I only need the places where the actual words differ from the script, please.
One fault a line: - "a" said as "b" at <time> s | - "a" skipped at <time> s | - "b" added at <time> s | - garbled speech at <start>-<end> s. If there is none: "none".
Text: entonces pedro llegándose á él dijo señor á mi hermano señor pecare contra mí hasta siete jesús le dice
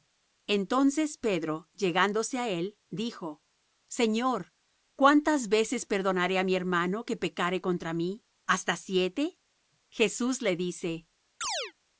- "cuántas veces perdonaré" added at 5.0 s
- "señor" said as "que" at 7.0 s